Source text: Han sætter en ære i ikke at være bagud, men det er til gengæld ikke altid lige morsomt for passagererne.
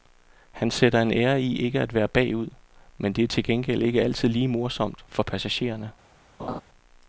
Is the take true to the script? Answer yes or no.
yes